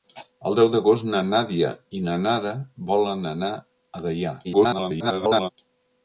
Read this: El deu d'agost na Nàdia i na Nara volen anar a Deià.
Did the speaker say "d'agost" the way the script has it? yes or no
yes